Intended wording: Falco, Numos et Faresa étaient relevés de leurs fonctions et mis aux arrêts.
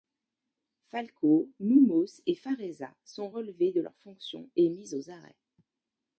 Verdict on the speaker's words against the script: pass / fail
fail